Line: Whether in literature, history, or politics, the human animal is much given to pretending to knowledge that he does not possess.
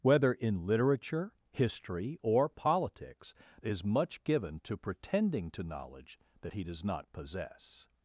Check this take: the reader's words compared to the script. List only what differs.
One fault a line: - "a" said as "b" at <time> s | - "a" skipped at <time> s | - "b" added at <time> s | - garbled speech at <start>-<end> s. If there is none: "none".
- "the human animal" skipped at 3.4 s